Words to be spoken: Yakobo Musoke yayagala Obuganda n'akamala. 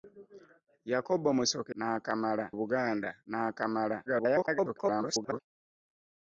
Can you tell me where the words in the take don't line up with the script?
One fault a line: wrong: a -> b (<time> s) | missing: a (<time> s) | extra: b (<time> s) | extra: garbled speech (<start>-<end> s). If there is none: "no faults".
wrong: yayagala -> n'akamala (1.8 s)
extra: garbled speech (4.1-5.4 s)